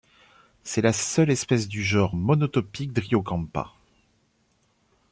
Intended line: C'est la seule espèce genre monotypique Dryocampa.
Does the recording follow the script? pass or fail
fail